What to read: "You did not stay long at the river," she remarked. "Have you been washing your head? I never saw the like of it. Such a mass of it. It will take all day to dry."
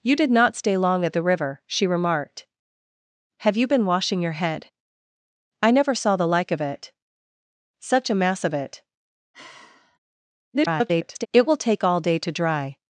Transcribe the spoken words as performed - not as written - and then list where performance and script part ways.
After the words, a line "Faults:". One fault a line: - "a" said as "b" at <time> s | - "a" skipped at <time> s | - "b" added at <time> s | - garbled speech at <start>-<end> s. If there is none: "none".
"You did not stay long at the river," she remarked. "Have you been washing your head? I never saw the like of it. Such a mass of it. [garbled] It will take all day to dry."
Faults:
- garbled speech at 10.5-11.3 s